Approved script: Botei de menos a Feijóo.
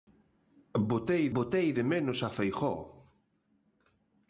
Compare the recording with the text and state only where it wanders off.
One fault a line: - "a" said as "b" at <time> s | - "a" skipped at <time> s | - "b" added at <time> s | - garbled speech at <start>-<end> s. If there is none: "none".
- "botei" added at 1.3 s